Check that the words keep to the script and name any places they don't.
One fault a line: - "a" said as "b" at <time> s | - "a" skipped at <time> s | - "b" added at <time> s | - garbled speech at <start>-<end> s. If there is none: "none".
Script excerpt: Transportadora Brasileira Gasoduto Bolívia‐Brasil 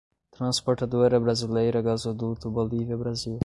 none